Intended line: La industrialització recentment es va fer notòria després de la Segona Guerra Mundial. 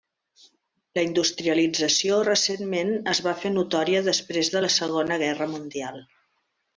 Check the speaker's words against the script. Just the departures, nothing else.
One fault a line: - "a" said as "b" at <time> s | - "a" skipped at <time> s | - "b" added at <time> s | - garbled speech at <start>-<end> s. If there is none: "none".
none